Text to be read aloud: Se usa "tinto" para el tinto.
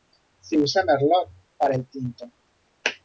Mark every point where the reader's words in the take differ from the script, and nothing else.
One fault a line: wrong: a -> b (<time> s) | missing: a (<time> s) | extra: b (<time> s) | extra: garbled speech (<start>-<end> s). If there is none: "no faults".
wrong: tinto -> merlot (0.8 s)